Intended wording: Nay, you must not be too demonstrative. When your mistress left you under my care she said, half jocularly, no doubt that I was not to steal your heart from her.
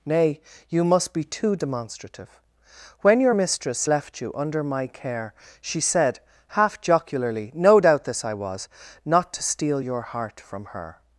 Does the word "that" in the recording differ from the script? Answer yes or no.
yes